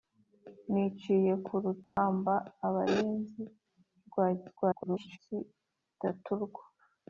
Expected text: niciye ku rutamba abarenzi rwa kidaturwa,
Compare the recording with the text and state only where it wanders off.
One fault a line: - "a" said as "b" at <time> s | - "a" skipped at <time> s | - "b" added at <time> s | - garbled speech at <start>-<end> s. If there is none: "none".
- garbled speech at 4.6-5.2 s